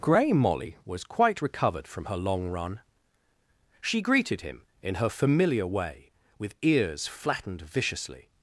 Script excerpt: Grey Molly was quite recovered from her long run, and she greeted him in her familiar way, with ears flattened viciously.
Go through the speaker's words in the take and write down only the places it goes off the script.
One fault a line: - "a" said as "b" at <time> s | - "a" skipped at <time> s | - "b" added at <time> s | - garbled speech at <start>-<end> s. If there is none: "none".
- "and" skipped at 2.8 s